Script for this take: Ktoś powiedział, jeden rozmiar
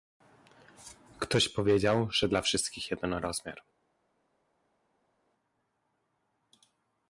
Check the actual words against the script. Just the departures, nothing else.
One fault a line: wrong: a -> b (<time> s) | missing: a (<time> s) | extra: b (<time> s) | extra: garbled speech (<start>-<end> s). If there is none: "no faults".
extra: że dla wszystkich (2.1 s)